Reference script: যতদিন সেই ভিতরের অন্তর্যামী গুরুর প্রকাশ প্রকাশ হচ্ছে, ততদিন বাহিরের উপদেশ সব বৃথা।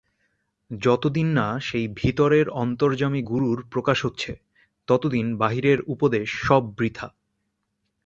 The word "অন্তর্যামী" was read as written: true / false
true